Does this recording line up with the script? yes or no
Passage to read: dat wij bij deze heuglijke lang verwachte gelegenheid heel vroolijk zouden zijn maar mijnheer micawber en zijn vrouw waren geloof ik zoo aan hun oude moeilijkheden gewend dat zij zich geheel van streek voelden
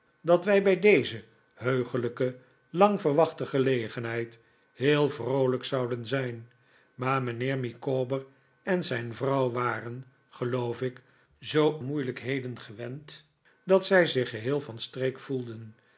no